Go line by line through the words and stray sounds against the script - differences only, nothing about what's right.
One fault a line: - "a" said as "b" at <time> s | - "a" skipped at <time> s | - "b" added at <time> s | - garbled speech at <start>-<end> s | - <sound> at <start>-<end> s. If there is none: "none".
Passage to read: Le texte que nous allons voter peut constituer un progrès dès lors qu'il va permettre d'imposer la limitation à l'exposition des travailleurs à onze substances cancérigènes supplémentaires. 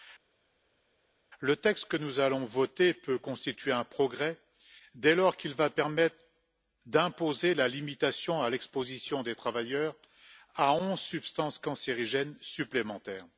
none